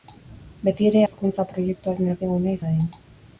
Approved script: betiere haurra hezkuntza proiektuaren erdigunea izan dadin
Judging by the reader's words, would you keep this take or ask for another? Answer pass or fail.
fail